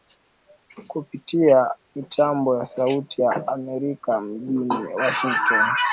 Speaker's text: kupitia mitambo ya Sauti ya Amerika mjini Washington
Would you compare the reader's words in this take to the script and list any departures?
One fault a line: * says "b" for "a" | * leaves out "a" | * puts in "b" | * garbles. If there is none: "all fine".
all fine